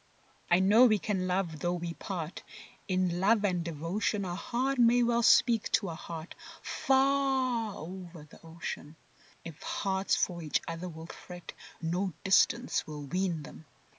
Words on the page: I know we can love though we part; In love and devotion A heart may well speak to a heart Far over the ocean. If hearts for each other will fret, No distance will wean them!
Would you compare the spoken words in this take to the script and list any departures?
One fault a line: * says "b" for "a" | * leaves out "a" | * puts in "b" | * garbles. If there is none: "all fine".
all fine